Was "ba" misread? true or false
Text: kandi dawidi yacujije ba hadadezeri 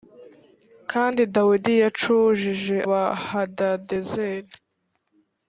false